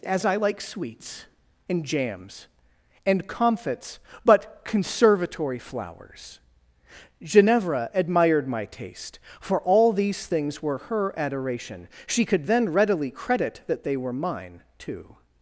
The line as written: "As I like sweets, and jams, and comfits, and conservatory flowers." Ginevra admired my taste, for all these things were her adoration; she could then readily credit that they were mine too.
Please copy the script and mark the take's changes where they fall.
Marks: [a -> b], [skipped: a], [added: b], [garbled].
"As I like sweets, and jams, and comfits, [and -> but] conservatory flowers." Ginevra admired my taste, for all these things were her adoration; she could then readily credit that they were mine too.